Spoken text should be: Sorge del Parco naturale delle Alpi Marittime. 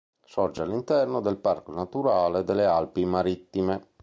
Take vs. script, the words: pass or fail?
fail